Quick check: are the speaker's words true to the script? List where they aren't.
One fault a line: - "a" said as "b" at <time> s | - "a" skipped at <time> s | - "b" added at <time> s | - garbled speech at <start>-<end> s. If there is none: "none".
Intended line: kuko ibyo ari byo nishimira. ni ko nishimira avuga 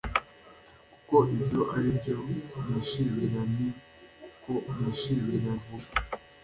none